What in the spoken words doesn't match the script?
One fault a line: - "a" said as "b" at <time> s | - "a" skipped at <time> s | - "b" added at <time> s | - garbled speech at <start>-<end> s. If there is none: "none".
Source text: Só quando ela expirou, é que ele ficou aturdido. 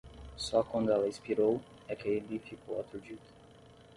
none